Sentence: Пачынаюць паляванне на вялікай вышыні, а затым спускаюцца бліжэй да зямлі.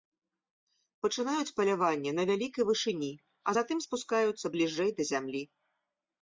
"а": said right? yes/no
yes